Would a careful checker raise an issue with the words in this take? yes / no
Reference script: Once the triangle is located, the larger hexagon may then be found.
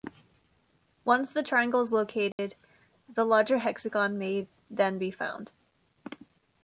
no